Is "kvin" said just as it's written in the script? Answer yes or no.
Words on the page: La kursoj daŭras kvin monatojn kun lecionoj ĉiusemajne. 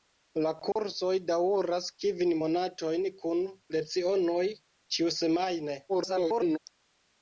yes